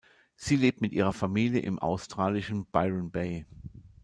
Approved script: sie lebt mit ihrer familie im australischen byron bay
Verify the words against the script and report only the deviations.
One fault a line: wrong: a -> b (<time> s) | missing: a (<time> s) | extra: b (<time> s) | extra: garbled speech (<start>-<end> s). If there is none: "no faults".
no faults